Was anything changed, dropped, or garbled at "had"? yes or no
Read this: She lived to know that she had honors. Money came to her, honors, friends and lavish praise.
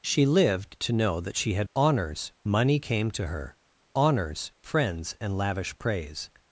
no